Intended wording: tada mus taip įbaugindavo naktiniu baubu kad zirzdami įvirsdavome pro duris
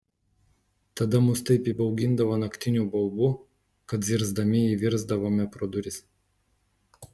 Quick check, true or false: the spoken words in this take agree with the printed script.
true